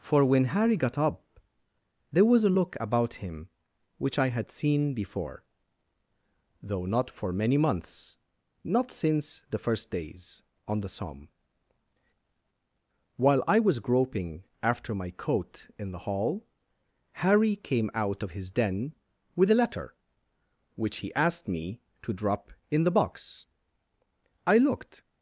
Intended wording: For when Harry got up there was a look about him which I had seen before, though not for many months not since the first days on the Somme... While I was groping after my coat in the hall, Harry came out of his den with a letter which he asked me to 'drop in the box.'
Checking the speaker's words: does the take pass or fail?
fail